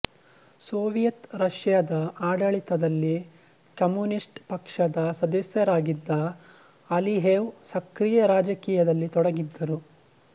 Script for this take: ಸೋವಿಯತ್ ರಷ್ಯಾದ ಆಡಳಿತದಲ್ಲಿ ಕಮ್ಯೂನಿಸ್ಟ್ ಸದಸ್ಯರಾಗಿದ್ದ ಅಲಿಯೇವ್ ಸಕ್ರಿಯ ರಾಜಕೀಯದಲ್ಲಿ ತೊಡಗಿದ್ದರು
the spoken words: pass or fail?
fail